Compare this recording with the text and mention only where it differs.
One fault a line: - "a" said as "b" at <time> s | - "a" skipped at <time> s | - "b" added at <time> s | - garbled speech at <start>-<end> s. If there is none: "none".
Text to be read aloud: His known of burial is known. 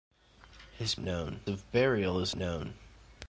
none